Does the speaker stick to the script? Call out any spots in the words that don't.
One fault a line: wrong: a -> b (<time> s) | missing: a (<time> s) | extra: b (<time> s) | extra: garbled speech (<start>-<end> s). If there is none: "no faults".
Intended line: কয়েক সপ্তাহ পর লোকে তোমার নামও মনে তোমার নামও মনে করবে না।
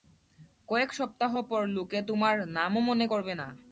missing: তোমার নামও মনে (3.1 s)